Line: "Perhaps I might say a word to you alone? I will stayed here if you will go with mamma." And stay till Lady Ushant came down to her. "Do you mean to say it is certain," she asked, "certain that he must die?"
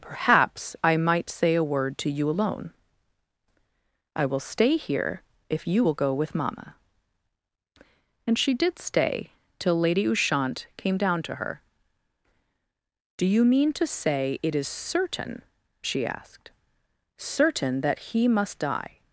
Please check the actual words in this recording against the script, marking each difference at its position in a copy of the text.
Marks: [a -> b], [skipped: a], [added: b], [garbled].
"Perhaps I might say a word to you alone? I will [stayed -> stay] here if you will go with mamma." And [added: she did] stay till Lady Ushant came down to her. "Do you mean to say it is certain," she asked, "certain that he must die?"